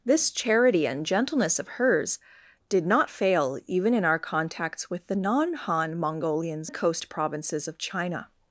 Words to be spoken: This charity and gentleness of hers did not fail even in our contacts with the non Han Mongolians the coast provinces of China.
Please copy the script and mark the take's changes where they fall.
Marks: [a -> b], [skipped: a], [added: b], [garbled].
This charity and gentleness of hers did not fail even in our contacts with the non Han Mongolians the coast provinces of China.